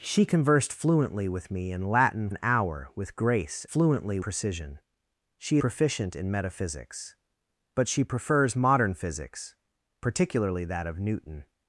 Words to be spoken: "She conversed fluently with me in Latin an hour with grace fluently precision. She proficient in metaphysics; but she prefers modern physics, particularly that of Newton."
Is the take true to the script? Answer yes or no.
yes